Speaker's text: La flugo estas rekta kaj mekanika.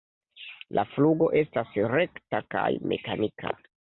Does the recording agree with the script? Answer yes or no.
yes